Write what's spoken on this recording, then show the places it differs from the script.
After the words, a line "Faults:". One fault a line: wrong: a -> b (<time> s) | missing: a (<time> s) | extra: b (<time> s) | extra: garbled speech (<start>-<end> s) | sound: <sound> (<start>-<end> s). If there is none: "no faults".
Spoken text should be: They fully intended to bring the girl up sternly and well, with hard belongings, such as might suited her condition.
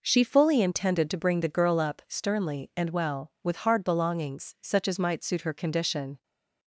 She fully intended to bring the girl up sternly and well, with hard belongings, such as might suit her condition.
Faults:
wrong: They -> She (0.0 s)
wrong: suited -> suit (5.2 s)